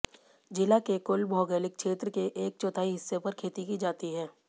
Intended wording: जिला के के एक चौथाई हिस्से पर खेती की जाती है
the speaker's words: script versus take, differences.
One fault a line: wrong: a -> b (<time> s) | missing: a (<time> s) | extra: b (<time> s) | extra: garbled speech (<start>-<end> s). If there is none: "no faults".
extra: कुल भौगोलिक क्षेत्र (1.1 s)